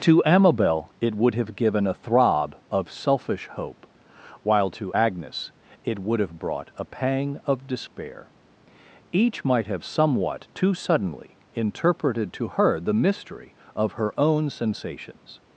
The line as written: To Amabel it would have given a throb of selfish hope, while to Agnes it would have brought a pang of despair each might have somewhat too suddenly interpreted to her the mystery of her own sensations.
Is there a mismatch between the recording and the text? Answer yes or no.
no